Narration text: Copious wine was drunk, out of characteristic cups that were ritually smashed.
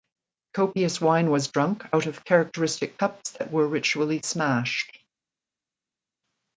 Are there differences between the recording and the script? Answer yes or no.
no